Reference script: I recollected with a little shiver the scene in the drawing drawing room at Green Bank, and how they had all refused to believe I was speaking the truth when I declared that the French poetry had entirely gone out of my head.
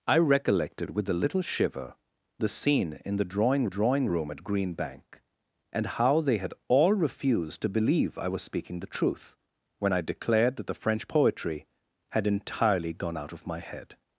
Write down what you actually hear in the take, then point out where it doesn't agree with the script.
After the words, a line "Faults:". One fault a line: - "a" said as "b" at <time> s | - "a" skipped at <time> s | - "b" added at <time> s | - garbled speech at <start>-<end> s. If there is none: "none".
I recollected with a little shiver the scene in the drawing drawing room at Green Bank, and how they had all refused to believe I was speaking the truth when I declared that the French poetry had entirely gone out of my head.
Faults:
none